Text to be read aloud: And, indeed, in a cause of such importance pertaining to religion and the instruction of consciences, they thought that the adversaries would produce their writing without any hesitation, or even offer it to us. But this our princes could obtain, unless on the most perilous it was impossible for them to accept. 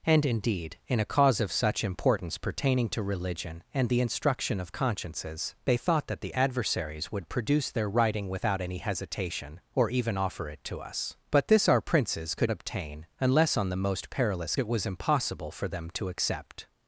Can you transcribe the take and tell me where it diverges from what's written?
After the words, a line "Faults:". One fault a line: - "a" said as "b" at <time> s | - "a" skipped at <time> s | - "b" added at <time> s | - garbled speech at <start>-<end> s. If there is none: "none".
And, indeed, in a cause of such importance pertaining to religion and the instruction of consciences, they thought that the adversaries would produce their writing without any hesitation, or even offer it to us. But this our princes could obtain, unless on the most perilous it was impossible for them to accept.
Faults:
none